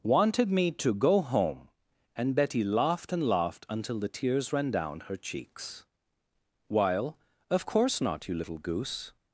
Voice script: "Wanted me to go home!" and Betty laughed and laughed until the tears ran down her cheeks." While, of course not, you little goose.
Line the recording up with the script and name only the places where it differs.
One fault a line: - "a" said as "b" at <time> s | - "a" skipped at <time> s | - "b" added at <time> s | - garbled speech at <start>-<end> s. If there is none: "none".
none